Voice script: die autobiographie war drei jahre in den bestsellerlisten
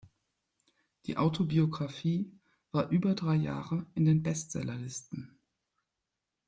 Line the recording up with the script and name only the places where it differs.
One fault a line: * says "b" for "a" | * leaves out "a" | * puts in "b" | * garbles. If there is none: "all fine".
* puts in "über"